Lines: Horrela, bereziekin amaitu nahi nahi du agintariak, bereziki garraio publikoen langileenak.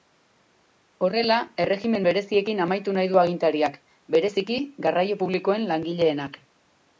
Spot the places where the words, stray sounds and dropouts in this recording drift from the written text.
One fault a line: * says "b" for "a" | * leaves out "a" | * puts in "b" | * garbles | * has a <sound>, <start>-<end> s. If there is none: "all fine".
* puts in "erregimen"
* leaves out "nahi"